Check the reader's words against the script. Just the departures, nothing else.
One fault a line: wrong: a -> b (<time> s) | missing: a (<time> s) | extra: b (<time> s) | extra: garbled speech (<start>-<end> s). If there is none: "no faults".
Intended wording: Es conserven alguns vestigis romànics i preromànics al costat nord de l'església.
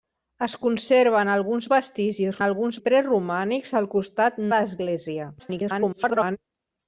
wrong: romànics -> alguns (2.4 s)
missing: nord (4.5 s)
extra: garbled speech (5.4-6.4 s)